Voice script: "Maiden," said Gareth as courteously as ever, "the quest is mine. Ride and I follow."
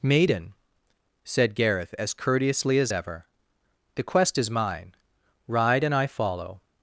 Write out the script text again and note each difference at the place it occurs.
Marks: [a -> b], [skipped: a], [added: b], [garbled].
"Maiden," said Gareth as courteously as ever, "the quest is mine. Ride and I follow."